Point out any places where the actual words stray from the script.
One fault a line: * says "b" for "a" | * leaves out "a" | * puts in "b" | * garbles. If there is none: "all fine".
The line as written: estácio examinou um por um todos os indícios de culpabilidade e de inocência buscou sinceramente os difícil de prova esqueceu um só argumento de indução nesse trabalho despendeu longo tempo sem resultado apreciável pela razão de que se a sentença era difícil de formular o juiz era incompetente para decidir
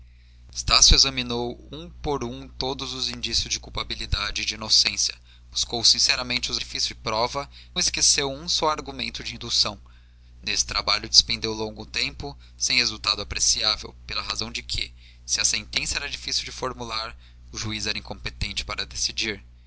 all fine